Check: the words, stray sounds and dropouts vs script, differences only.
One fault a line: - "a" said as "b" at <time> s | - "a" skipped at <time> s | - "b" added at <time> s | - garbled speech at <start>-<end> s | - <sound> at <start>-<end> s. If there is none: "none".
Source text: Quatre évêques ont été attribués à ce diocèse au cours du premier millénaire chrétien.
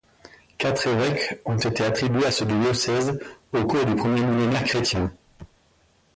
none